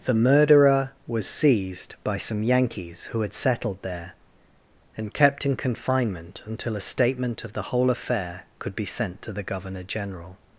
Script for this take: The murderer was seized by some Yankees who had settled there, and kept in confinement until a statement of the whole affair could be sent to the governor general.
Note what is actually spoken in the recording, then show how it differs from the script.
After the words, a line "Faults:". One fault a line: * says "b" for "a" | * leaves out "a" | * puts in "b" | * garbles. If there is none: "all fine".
The murderer was seized by some Yankees who had settled there, and kept in confinement until a statement of the whole affair could be sent to the governor general.
Faults:
all fine